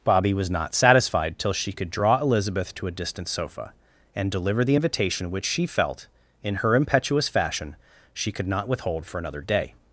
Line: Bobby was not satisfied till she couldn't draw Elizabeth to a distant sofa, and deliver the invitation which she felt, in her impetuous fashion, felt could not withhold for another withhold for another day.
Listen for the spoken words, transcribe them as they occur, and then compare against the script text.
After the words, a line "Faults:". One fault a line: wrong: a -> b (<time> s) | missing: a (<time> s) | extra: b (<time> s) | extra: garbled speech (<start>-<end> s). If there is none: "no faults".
Bobby was not satisfied till she could draw Elizabeth to a distant sofa, and deliver the invitation which she felt, in her impetuous fashion, she could not withhold for another day.
Faults:
wrong: couldn't -> could (1.7 s)
wrong: felt -> she (8.1 s)
missing: withhold for another (9.4 s)